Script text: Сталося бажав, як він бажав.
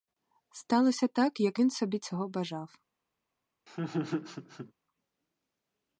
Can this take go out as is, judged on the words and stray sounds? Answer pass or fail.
fail